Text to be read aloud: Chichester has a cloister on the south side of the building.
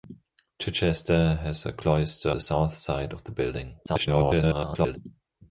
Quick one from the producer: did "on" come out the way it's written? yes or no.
no